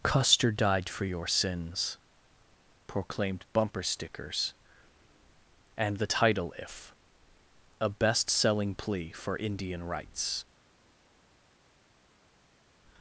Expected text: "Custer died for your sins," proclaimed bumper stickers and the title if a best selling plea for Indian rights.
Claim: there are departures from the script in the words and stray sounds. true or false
false